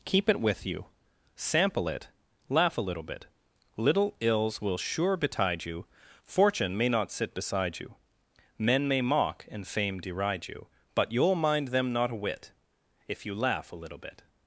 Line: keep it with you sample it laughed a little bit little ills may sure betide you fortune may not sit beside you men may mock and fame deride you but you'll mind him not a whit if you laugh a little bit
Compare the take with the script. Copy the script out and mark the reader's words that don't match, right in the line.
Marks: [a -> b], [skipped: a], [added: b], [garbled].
keep it with you sample it [laughed -> laugh] a little bit little ills [may -> will] sure betide you fortune may not sit beside you men may mock and fame deride you but you'll mind [him -> them] not a whit if you laugh a little bit